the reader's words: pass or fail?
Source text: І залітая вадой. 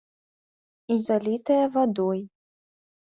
pass